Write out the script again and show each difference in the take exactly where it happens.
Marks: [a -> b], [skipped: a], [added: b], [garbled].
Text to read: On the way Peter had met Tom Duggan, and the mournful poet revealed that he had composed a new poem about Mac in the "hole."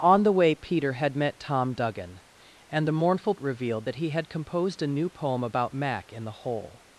On the way Peter had met Tom Duggan, and the mournful [skipped: poet] revealed that he had composed a new poem about Mac in the "hole."